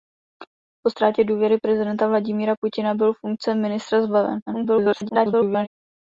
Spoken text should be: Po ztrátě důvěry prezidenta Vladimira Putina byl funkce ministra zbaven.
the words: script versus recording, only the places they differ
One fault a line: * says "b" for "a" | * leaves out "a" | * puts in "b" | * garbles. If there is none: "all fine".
* garbles